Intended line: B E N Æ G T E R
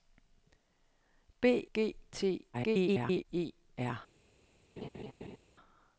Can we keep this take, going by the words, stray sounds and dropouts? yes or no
no